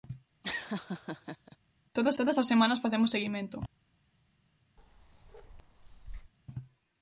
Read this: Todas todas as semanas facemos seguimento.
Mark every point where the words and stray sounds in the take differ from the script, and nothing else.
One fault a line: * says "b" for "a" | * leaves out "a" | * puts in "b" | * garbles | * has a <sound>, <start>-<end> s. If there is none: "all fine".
* has a laugh, 0.4-1.6 s
* has a bark, 4.8-6.3 s